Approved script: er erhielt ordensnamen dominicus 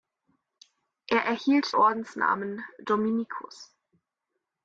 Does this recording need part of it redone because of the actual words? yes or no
no